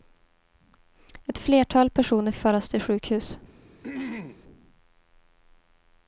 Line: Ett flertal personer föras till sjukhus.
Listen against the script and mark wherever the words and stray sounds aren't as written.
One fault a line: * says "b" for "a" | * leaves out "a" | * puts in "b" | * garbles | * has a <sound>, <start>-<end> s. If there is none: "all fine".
* has a throat clearing, 3.8-4.4 s